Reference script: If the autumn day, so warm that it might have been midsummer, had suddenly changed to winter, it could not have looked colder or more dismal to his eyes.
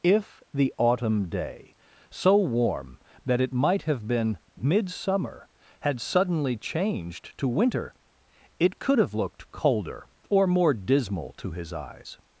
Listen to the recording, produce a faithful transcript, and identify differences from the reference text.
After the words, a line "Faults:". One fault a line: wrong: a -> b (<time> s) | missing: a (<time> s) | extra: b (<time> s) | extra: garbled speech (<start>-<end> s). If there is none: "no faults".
If the autumn day, so warm that it might have been midsummer, had suddenly changed to winter, it could have looked colder or more dismal to his eyes.
Faults:
missing: not (9.0 s)